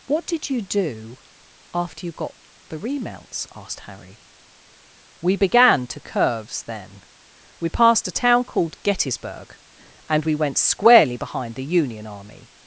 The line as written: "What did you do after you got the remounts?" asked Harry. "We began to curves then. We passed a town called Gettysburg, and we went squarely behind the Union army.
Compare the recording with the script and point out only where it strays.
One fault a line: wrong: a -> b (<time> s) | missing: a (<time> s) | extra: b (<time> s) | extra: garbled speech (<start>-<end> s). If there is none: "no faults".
no faults